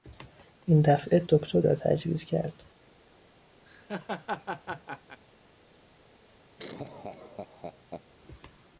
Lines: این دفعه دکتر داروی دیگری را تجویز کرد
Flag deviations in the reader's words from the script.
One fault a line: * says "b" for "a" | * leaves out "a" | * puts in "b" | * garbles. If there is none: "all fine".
* leaves out "داروی دیگری"